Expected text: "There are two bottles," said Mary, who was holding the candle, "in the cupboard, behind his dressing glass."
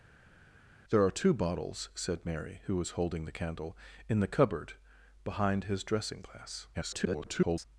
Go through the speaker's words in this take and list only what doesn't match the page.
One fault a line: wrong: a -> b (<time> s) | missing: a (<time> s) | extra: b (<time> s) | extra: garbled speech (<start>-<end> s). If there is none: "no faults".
extra: garbled speech (6.7-7.7 s)